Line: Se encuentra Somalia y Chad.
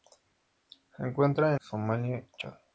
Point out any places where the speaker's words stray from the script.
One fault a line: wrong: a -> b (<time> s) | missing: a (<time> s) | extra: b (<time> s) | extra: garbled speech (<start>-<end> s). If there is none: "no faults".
no faults